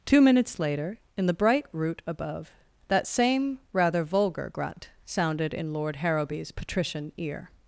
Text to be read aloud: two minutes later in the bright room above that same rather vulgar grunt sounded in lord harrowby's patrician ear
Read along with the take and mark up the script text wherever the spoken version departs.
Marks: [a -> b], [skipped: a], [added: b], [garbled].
two minutes later in the bright [room -> root] above that same rather vulgar grunt sounded in lord harrowby's patrician ear